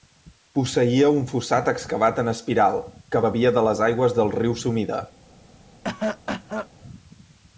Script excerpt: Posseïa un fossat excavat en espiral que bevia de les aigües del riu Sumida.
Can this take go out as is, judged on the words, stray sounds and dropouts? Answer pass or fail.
fail